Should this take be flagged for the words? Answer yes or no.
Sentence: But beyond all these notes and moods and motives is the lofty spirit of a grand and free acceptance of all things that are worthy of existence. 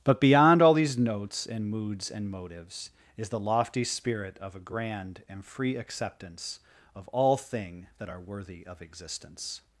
yes